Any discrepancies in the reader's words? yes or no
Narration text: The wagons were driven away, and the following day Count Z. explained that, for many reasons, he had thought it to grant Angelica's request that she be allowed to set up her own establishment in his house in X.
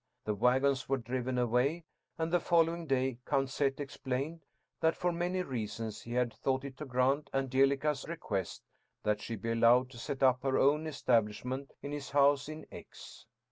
no